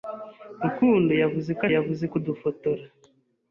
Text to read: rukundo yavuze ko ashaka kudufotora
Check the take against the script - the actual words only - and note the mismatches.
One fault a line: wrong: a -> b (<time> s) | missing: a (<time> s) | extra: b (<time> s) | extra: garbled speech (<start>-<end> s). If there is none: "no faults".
wrong: ashaka -> yavuze (1.7 s)